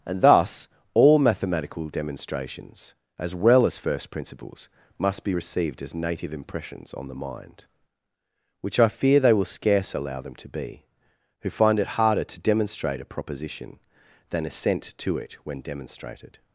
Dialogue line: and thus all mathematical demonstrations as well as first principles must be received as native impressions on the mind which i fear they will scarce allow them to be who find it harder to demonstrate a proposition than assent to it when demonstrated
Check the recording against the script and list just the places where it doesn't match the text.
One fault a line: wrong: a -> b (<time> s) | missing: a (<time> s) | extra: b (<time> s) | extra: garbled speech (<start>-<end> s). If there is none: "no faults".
no faults